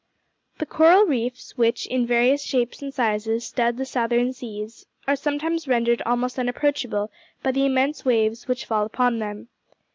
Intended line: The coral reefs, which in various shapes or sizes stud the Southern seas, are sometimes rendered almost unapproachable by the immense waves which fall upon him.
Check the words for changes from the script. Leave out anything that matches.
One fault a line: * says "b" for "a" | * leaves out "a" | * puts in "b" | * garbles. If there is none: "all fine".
* says "and" for "or"
* says "them" for "him"